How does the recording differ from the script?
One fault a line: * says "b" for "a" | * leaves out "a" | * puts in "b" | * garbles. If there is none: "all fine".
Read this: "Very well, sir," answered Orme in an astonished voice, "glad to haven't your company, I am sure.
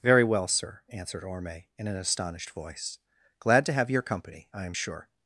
* says "have" for "haven't"